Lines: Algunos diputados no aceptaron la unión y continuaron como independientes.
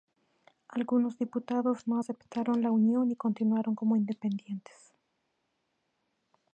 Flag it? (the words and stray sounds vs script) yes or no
no